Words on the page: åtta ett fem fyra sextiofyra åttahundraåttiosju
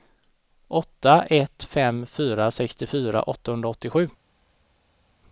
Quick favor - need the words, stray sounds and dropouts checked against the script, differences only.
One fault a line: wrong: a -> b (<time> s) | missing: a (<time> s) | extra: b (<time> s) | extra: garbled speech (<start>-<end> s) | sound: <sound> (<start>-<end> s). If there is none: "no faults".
no faults